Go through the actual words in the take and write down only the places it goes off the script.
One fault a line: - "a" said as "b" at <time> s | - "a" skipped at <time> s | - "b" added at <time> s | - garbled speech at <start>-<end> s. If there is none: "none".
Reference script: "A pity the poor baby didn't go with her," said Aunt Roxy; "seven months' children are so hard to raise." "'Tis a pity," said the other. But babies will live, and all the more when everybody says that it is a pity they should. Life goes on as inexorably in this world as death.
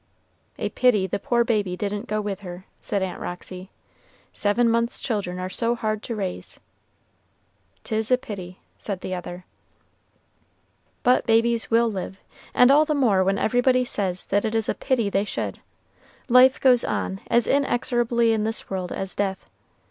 none